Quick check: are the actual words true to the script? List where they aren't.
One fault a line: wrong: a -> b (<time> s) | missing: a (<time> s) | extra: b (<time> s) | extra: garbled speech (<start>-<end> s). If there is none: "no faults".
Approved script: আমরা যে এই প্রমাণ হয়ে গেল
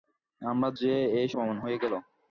no faults